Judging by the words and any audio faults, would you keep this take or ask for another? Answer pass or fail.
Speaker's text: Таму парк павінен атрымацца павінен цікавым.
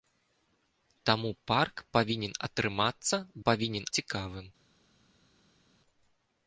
pass